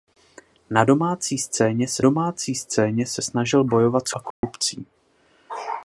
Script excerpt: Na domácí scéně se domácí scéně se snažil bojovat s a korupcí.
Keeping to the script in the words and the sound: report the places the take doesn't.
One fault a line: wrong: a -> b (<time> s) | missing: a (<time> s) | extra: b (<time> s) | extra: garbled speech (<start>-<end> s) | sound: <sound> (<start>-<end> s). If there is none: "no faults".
sound: dropout (4.3-4.4 s)